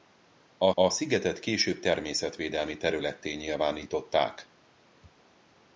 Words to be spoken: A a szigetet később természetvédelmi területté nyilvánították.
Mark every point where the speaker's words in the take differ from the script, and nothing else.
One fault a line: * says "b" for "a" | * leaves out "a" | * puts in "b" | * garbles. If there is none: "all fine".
all fine